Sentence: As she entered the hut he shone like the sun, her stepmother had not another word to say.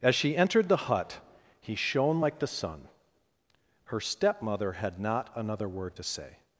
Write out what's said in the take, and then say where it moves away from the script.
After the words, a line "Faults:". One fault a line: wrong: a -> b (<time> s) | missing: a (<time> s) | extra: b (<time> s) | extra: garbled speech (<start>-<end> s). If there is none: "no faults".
As she entered the hut he shone like the sun, her stepmother had not another word to say.
Faults:
no faults